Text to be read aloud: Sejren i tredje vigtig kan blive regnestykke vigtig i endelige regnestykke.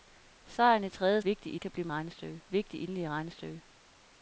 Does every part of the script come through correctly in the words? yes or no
yes